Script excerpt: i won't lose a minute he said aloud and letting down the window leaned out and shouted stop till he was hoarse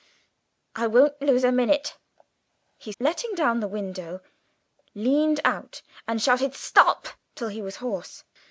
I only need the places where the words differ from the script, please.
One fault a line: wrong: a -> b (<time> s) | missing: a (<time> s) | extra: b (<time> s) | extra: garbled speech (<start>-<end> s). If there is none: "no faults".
missing: said aloud and (2.9 s)